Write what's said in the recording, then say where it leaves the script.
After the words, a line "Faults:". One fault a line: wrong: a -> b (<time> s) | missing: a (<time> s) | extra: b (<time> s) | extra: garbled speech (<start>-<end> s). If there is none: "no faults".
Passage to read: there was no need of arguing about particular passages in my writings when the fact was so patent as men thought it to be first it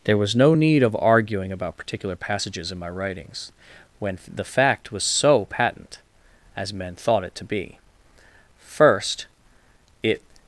there was no need of arguing about particular passages in my writings when the fact was so patent as men thought it to be first it
Faults:
no faults